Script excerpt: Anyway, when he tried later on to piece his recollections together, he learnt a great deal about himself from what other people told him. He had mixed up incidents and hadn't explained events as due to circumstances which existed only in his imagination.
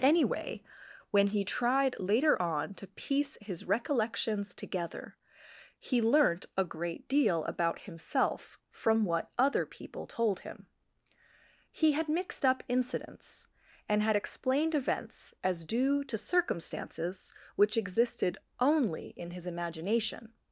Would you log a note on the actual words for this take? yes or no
yes